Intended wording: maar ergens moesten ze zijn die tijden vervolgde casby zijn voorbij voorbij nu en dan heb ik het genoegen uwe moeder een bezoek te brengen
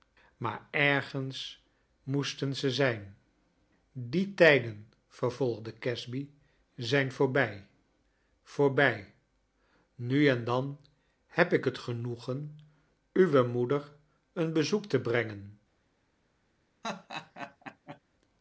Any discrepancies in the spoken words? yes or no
no